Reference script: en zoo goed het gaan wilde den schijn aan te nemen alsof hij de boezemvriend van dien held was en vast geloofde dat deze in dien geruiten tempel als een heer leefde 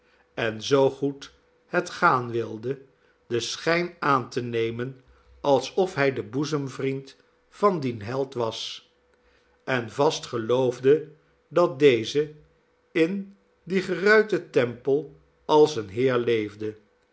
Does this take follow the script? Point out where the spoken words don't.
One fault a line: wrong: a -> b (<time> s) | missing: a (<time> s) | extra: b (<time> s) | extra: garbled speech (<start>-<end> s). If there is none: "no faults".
no faults